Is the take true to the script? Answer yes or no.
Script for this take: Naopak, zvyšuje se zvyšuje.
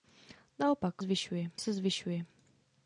yes